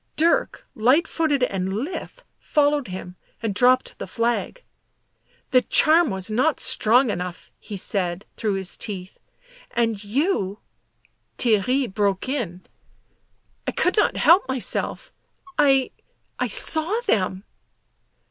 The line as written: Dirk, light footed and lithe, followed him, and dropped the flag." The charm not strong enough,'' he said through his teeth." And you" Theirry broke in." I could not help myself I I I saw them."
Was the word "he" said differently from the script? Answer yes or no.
no